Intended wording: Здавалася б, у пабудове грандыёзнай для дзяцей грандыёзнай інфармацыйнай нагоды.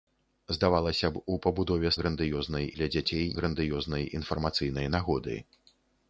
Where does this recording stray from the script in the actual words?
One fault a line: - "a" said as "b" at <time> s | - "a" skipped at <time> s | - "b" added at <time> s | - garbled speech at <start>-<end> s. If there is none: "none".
none